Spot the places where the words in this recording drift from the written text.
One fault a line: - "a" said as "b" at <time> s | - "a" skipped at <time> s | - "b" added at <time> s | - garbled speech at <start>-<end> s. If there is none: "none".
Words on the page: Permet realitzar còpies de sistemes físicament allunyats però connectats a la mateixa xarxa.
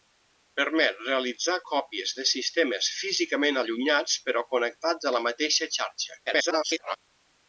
- garbled speech at 6.3-7.0 s